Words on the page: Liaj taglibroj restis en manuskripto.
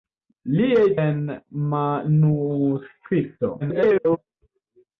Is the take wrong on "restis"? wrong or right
wrong